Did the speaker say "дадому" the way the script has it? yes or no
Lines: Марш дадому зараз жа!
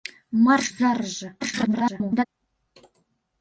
no